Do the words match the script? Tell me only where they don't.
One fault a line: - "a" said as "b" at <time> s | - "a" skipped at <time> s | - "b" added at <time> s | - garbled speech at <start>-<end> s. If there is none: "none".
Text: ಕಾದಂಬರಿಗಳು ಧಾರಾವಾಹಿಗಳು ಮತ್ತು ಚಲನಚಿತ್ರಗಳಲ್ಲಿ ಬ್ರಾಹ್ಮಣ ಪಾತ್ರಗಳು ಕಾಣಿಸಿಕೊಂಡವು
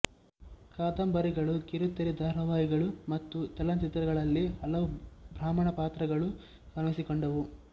- "ಕಿರುತೆರೆ" added at 1.7 s
- "ಹಲವು" added at 4.6 s